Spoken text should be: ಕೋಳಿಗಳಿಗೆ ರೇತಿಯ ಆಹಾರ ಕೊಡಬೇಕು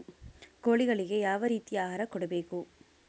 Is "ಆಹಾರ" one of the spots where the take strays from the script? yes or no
no